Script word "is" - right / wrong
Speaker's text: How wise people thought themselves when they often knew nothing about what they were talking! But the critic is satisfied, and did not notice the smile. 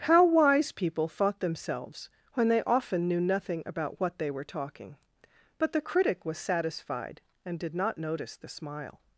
wrong